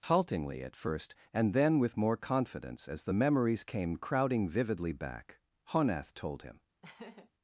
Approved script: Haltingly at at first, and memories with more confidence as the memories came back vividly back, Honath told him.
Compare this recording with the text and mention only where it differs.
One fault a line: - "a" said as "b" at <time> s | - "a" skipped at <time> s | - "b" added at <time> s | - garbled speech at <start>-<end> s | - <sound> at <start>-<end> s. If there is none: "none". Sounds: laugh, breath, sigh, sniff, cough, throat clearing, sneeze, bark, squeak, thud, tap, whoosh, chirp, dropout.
- "at" skipped at 0.8 s
- "memories" said as "then" at 1.5 s
- "back" said as "crowding" at 4.0 s
- laugh at 6.8-7.3 s